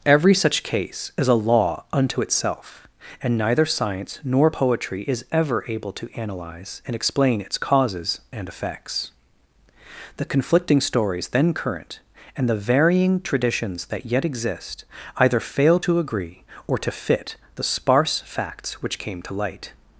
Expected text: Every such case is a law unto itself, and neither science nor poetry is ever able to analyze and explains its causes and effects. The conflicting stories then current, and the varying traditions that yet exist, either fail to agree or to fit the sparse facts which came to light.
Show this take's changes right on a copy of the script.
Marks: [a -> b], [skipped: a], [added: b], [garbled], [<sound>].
Every such case is a law unto itself, and neither science nor poetry is ever able to analyze and [explains -> explain] its causes and effects. The conflicting stories then current, and the varying traditions that yet exist, either fail to agree or to fit the sparse facts which came to light.